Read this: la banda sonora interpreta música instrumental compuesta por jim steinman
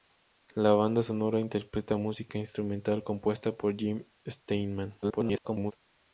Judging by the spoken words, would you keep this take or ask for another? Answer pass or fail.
fail